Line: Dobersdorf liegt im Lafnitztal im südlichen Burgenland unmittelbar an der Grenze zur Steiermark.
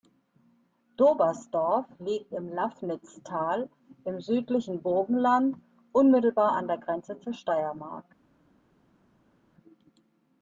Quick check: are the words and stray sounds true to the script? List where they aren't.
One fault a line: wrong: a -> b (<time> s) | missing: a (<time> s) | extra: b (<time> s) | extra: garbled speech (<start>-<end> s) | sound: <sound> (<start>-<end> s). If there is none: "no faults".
no faults